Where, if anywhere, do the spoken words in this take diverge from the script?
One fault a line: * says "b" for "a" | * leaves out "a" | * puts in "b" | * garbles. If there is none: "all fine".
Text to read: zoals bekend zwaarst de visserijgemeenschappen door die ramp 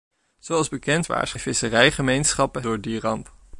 all fine